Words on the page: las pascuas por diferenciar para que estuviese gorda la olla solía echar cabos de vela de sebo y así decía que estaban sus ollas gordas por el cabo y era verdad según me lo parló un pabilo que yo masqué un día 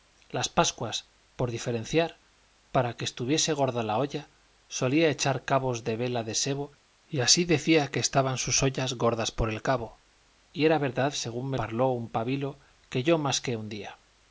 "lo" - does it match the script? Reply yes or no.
no